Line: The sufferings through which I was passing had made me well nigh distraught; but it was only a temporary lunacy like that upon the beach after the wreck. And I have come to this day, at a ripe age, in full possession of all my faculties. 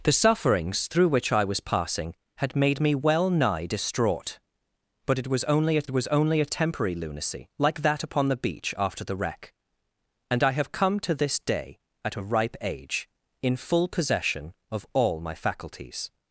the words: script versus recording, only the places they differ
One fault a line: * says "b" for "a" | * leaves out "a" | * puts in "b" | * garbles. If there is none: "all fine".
* puts in "was only a"